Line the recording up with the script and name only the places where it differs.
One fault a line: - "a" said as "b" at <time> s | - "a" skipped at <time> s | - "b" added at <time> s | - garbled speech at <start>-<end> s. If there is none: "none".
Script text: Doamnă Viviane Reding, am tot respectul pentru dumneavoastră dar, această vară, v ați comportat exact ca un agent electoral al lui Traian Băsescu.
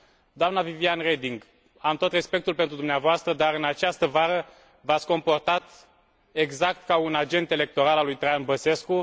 - "în" added at 3.5 s